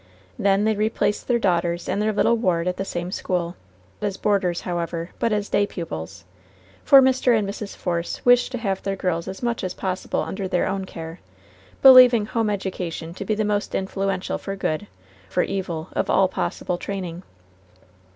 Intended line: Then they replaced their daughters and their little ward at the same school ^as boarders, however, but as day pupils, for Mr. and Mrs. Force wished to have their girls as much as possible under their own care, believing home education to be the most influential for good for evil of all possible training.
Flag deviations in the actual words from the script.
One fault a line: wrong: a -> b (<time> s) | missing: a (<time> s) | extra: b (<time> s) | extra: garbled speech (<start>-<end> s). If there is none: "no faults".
no faults